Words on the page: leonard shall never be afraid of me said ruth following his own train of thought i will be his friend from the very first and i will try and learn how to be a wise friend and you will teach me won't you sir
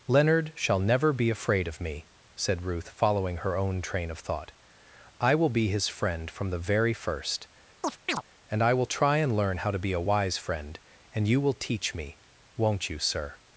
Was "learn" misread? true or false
false